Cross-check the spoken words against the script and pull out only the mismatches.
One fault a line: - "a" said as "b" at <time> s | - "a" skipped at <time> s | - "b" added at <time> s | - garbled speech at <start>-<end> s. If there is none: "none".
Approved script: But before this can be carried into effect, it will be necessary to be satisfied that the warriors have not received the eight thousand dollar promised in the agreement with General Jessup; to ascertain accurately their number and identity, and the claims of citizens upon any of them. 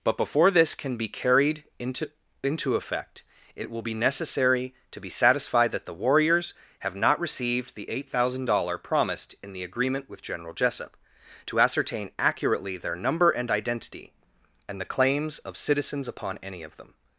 - "into" added at 2.4 s